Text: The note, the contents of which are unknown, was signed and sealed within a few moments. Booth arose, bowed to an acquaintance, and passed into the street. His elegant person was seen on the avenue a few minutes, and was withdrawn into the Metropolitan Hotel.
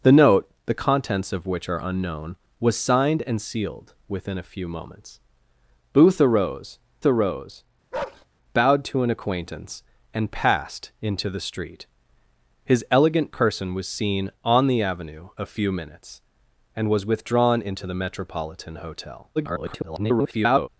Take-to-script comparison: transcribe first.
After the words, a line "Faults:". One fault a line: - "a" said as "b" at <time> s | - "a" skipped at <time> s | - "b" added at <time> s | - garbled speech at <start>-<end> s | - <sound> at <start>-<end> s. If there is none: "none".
The note, the contents of which are unknown, was signed and sealed within a few moments. Booth arose arose, bowed to an acquaintance, and passed into the street. His elegant person was seen on the avenue a few minutes, and was withdrawn into the Metropolitan Hotel. [garbled]
Faults:
- "arose" added at 7.0 s
- bark at 7.9-8.3 s
- garbled speech at 19.4-20.7 s